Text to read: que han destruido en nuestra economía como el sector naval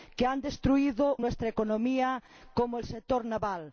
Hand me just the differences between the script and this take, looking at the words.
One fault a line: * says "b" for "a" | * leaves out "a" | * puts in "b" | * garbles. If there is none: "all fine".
all fine